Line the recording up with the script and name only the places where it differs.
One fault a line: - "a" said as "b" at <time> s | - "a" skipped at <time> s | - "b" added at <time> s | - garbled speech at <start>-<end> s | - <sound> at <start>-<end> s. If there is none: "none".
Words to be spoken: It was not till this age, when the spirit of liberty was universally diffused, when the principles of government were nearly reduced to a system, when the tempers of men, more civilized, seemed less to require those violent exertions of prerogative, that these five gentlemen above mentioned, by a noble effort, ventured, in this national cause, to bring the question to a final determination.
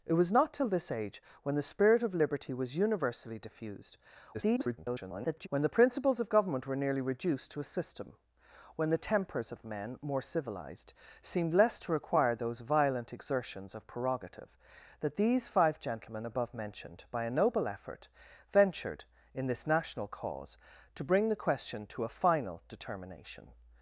- garbled speech at 4.3-5.5 s